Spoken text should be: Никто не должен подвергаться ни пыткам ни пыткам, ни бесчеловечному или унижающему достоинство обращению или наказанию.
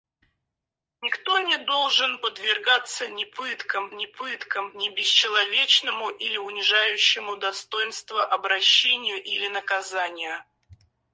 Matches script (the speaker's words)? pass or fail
pass